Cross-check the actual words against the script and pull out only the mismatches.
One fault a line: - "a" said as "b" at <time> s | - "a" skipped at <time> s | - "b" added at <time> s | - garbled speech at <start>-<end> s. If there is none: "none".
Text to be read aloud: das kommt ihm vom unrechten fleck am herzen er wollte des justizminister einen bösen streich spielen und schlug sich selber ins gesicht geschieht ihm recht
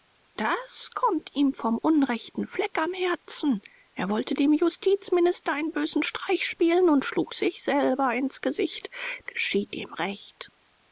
- "des" said as "dem" at 4.3 s